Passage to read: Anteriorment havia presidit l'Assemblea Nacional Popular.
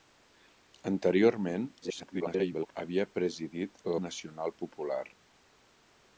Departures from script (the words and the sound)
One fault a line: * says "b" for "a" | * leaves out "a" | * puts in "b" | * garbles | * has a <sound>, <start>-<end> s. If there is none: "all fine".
* garbles
* leaves out "l'Assemblea"